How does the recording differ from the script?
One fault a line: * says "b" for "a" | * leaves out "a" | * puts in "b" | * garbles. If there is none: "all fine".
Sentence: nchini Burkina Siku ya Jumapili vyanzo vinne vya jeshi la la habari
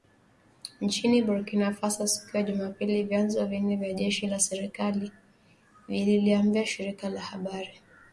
* puts in "Faso"
* puts in "serikali vililiambia shirika"